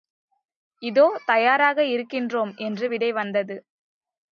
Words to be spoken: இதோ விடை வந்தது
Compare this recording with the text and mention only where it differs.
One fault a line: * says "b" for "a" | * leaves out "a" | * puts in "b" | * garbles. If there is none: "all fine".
* puts in "தயாராக இருக்கின்றோம் என்று"